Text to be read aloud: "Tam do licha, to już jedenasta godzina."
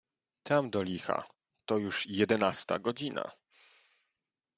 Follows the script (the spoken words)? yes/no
yes